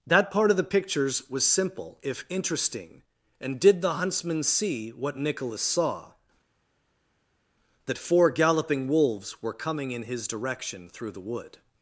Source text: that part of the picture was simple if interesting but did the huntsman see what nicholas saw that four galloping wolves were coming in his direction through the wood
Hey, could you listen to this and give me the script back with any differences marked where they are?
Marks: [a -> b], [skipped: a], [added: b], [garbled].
that part of the [picture -> pictures] was simple if interesting [but -> and] did the huntsman see what nicholas saw that four galloping wolves were coming in his direction through the wood